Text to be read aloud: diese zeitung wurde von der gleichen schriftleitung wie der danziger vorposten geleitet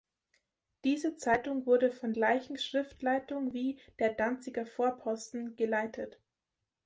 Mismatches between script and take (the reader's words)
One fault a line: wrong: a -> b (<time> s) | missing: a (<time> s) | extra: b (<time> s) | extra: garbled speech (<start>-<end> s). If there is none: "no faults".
missing: der (2.1 s)